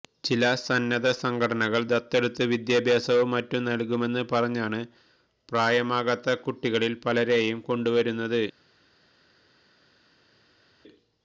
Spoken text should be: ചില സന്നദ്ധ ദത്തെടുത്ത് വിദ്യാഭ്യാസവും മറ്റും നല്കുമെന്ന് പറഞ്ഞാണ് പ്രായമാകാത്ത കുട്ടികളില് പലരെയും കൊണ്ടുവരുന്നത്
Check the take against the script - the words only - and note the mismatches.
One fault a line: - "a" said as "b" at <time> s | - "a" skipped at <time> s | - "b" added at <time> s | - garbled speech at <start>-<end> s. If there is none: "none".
- "സംഘടനകള്" added at 1.2 s